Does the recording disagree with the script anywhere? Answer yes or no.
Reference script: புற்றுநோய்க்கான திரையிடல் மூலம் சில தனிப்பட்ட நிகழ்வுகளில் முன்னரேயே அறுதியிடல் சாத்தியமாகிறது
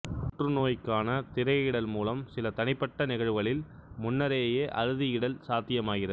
no